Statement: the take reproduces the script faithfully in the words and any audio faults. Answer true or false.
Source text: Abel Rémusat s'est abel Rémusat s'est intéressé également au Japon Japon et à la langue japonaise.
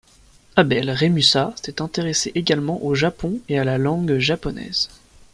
false